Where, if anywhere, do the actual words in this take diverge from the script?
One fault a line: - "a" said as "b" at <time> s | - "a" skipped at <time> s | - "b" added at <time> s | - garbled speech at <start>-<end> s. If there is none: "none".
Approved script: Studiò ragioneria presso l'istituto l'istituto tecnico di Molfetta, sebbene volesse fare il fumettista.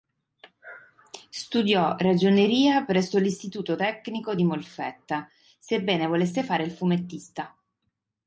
- "l'istituto" skipped at 3.8 s